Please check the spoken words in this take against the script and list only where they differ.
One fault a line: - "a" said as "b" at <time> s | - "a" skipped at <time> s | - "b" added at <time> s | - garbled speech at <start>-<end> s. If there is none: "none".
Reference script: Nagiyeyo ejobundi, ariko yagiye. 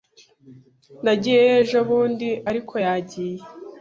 none